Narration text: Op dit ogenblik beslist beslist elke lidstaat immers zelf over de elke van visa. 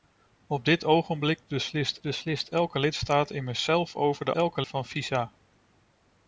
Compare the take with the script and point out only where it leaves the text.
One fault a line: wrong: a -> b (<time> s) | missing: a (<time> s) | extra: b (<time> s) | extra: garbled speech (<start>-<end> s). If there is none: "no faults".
no faults